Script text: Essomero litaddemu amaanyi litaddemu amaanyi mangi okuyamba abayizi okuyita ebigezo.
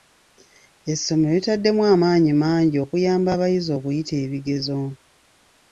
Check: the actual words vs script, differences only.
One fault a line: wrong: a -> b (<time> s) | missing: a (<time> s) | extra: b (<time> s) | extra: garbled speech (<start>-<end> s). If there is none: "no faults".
missing: litaddemu amaanyi (2.3 s)